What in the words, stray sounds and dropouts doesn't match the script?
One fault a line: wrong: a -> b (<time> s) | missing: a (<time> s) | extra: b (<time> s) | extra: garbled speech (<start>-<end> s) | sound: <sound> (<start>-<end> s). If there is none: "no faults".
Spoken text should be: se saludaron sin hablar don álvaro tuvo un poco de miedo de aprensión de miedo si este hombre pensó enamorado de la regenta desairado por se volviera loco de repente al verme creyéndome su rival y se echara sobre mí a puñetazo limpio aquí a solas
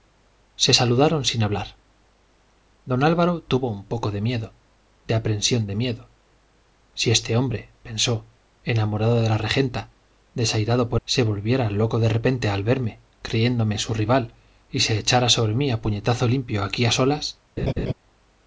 sound: laugh (17.6-17.9 s)